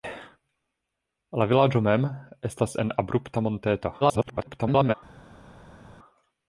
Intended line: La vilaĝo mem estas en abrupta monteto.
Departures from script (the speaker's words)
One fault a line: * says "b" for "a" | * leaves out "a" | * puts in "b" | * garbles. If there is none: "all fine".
* garbles